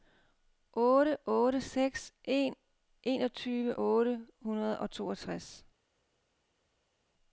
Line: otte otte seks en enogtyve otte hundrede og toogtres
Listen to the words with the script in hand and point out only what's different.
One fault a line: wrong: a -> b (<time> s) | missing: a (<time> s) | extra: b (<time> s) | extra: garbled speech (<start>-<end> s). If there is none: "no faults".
no faults